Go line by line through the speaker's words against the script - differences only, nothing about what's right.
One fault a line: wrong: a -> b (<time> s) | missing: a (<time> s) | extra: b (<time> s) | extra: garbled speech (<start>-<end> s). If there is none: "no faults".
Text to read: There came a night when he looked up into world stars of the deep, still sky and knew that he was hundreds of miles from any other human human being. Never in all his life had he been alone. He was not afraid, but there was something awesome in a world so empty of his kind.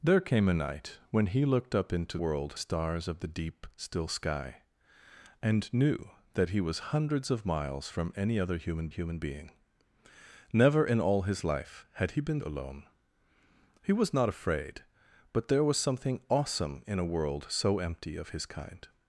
no faults